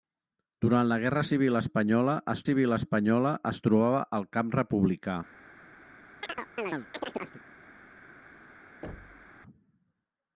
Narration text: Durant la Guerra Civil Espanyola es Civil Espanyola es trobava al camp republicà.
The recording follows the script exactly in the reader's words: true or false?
true